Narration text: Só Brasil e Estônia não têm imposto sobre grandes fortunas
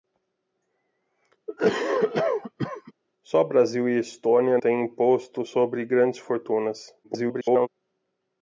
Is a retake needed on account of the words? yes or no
yes